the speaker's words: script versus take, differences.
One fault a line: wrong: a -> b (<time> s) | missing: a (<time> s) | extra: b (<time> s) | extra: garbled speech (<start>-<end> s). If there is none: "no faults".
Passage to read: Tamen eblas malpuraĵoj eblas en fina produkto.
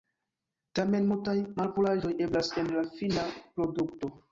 wrong: eblas -> multaj (1.1 s)
extra: la (2.8 s)